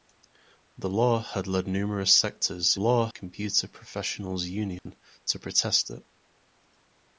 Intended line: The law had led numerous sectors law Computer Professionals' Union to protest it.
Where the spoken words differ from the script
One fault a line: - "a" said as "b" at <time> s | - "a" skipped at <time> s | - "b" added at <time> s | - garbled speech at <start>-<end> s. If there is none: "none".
none